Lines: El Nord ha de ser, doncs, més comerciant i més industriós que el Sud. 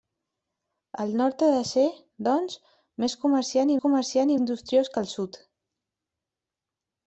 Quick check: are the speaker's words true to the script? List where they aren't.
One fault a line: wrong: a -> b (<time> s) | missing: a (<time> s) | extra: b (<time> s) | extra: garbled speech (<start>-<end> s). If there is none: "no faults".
wrong: més -> comerciant (3.8 s)